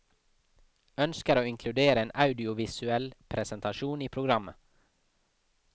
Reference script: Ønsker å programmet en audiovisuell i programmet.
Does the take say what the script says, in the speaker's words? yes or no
no